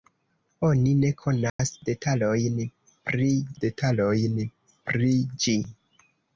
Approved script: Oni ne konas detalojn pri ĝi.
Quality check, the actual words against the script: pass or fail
fail